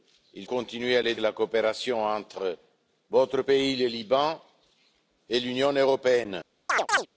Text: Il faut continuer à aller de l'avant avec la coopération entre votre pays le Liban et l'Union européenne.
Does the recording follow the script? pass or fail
fail